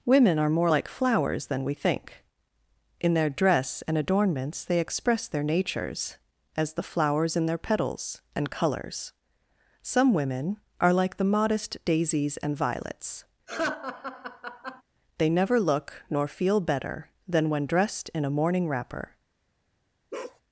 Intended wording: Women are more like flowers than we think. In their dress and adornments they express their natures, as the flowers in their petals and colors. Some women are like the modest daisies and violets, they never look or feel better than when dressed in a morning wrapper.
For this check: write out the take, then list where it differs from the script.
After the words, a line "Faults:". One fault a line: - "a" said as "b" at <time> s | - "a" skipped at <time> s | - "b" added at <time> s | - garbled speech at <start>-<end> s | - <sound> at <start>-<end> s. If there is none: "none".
Women are more like flowers than we think. In their dress and adornments they express their natures, as the flowers in their petals and colors. Some women are like the modest daisies and violets, they never look nor feel better than when dressed in a morning wrapper.
Faults:
- laugh at 13.5-14.8 s
- "or" said as "nor" at 16.1 s
- bark at 20.1-20.4 s